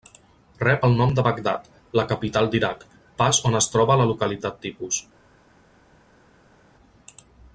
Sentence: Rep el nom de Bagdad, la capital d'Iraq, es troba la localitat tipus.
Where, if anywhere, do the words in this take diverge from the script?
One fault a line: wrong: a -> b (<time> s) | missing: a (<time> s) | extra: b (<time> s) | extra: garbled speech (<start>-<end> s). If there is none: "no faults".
extra: pas on (3.2 s)